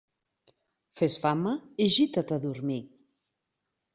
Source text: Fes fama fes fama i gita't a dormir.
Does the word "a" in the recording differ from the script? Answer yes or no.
no